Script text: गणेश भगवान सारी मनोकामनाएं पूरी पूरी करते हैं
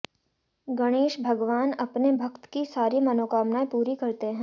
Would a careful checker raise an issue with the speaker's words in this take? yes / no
yes